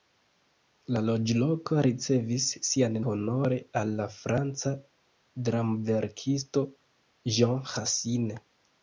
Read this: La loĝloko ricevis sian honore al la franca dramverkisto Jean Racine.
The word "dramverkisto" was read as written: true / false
true